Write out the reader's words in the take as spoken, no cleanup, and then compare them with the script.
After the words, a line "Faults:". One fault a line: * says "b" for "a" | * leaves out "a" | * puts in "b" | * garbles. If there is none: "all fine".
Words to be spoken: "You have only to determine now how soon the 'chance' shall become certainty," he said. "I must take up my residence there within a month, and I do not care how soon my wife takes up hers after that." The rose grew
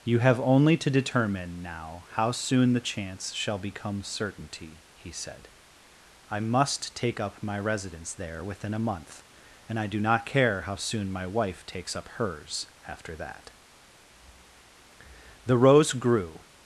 "You have only to determine now how soon the 'chance' shall become certainty," he said. "I must take up my residence there within a month, and I do not care how soon my wife takes up hers after that." The rose grew
Faults:
all fine